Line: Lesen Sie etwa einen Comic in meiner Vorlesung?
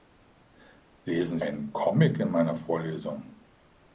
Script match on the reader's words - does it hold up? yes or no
no